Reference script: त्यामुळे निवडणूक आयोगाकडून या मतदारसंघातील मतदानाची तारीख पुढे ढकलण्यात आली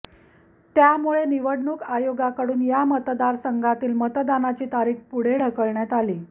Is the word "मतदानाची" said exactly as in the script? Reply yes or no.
yes